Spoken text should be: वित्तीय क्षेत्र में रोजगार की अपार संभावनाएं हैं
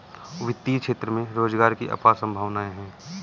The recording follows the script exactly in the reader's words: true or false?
true